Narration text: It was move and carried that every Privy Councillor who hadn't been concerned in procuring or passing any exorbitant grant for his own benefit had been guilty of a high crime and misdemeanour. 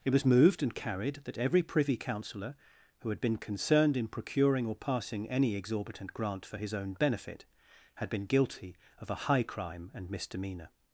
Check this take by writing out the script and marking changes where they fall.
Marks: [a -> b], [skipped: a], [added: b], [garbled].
It was [move -> moved] and carried that every Privy Councillor who [hadn't -> had] been concerned in procuring or passing any exorbitant grant for his own benefit had been guilty of a high crime and misdemeanour.